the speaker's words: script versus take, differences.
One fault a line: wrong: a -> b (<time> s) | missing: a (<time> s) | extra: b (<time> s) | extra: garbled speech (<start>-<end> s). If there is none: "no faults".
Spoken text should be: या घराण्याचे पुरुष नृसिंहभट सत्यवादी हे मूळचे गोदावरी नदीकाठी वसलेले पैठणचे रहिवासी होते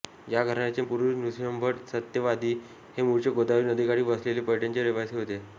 no faults